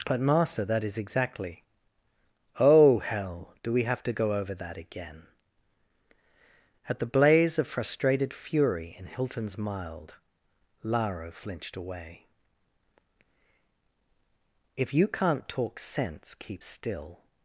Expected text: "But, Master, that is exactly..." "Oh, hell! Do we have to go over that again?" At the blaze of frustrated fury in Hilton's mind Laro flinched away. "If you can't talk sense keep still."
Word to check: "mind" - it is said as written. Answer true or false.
false